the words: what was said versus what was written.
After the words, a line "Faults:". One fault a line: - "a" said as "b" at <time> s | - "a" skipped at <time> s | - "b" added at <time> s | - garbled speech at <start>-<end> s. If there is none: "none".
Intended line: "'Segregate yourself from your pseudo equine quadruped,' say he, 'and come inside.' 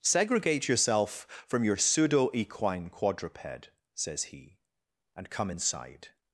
"'Segregate yourself from your pseudo equine quadruped,' says he, 'and come inside.'
Faults:
- "say" said as "says" at 3.9 s